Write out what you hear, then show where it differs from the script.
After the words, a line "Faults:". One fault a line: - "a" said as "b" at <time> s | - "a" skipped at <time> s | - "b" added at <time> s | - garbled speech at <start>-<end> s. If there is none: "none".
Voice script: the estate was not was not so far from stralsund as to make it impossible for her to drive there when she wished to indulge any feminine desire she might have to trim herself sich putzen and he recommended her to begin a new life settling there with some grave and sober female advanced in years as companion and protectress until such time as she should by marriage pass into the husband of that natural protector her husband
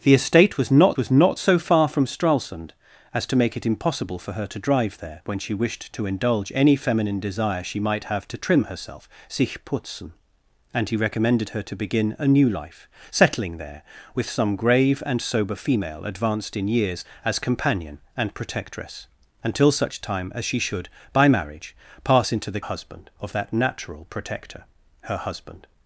the estate was not was not so far from stralsund as to make it impossible for her to drive there when she wished to indulge any feminine desire she might have to trim herself sich putzen and he recommended her to begin a new life settling there with some grave and sober female advanced in years as companion and protectress until such time as she should by marriage pass into the husband of that natural protector her husband
Faults:
none